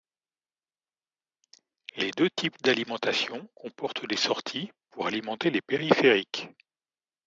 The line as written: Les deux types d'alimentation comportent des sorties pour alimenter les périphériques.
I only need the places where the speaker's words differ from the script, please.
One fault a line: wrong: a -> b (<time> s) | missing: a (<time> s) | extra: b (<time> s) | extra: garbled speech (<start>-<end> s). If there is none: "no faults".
no faults